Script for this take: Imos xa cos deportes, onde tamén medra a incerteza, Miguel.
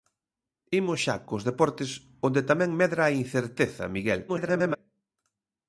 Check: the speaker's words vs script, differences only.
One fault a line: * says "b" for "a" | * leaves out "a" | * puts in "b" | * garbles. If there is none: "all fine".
* garbles